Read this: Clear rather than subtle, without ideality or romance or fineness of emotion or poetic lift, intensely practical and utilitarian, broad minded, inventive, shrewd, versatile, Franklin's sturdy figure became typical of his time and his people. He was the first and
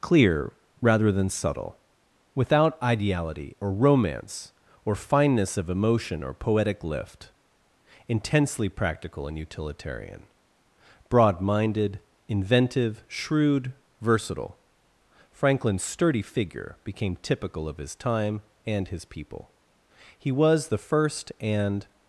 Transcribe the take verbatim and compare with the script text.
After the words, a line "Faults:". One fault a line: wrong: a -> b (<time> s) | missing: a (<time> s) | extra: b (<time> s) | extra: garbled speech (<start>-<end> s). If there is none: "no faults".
Clear rather than subtle, without ideality or romance or fineness of emotion or poetic lift, intensely practical and utilitarian, broad minded, inventive, shrewd, versatile, Franklin's sturdy figure became typical of his time and his people. He was the first and
Faults:
no faults